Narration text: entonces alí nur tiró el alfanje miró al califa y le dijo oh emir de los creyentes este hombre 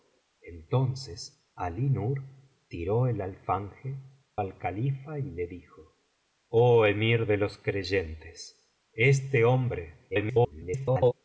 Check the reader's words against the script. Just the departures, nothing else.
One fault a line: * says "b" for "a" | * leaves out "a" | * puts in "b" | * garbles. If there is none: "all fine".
* leaves out "miró"
* garbles